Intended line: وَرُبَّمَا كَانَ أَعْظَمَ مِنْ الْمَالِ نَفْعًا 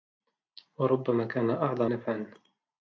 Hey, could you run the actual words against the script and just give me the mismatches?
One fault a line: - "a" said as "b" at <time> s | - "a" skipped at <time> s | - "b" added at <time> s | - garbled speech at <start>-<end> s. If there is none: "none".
- "مِنْ الْمَالِ" skipped at 1.9 s